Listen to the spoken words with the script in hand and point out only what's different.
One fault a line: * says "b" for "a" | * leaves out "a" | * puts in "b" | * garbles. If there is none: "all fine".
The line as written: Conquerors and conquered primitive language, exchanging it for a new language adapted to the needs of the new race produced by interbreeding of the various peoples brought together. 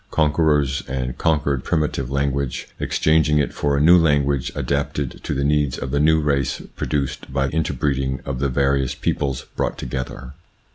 all fine